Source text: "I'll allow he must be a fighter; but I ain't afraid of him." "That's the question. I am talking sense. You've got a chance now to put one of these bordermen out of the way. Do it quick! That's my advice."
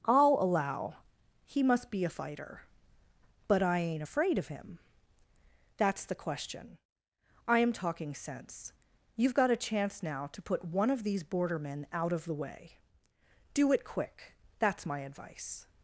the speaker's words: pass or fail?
pass